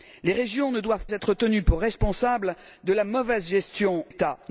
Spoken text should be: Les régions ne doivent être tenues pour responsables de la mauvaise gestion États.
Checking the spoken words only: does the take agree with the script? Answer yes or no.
yes